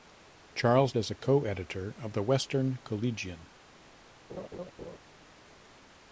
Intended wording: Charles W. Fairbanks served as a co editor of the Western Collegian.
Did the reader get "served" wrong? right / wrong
wrong